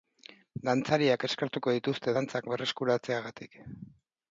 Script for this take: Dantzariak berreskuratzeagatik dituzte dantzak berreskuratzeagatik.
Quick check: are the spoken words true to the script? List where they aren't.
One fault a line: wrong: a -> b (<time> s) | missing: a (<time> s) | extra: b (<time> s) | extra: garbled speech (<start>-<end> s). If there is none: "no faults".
wrong: berreskuratzeagatik -> eskertuko (1.3 s)